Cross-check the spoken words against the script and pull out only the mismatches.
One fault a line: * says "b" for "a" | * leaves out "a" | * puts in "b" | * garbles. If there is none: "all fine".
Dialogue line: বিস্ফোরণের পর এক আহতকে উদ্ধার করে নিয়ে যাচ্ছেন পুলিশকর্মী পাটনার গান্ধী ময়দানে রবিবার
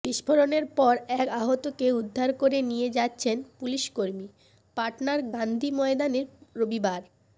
all fine